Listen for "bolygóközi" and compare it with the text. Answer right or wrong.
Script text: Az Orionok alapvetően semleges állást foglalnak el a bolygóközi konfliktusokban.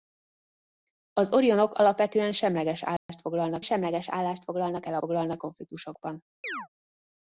wrong